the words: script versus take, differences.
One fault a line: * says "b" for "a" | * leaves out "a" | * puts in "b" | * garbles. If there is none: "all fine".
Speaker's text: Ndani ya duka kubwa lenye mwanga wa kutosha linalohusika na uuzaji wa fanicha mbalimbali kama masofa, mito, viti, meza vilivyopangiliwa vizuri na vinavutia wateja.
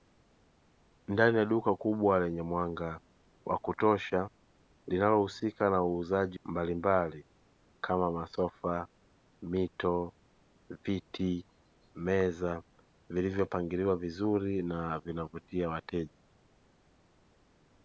* leaves out "wa fanicha"